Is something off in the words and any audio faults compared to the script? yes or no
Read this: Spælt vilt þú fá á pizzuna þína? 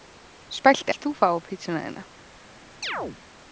yes